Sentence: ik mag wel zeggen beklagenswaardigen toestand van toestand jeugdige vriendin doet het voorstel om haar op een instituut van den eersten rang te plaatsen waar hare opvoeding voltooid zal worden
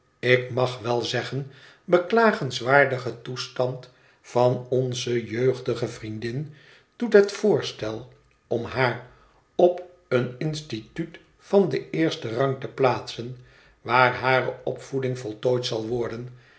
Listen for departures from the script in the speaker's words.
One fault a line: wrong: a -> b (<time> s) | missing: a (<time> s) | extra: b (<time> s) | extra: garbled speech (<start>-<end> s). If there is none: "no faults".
wrong: toestand -> onze (4.7 s)